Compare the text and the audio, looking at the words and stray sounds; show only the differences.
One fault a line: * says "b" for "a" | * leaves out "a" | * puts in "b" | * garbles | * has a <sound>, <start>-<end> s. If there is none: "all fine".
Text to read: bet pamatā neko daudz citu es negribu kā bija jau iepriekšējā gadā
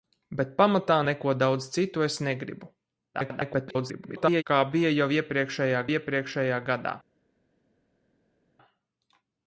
* garbles
* puts in "iepriekšējā"